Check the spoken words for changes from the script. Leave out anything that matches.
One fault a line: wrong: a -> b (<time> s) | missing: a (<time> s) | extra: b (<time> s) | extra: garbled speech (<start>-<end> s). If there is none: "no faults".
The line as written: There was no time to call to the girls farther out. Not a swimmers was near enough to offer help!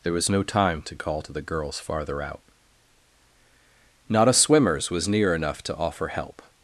no faults